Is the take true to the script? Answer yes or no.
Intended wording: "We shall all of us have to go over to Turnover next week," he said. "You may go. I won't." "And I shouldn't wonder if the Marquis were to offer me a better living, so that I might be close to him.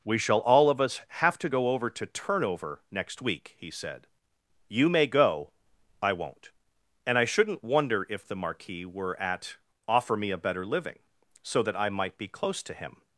no